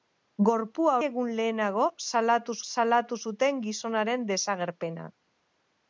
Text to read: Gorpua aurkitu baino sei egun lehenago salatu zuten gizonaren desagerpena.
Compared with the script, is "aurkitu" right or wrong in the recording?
wrong